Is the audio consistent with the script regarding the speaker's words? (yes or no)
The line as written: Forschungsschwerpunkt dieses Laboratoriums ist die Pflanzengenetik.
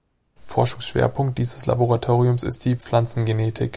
yes